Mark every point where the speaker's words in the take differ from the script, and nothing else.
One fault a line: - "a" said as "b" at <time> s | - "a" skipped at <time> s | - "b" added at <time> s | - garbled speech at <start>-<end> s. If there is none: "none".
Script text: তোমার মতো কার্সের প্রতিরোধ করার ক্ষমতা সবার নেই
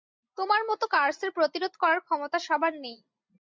none